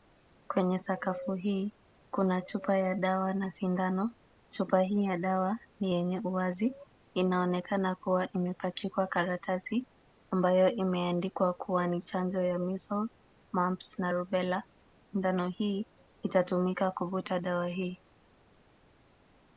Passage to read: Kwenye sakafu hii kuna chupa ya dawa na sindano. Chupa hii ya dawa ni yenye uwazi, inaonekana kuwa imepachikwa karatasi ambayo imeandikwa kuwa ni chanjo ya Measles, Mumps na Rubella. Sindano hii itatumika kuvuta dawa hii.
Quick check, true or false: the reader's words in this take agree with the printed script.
true